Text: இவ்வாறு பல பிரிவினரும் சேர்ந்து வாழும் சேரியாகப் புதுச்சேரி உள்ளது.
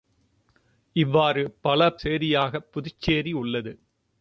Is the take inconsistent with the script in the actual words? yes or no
yes